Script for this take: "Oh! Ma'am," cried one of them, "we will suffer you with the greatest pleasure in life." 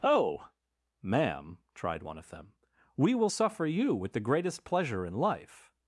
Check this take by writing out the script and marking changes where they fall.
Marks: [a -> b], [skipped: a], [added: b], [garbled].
"Oh! Ma'am," [cried -> tried] one of them, "we will suffer you with the greatest pleasure in life."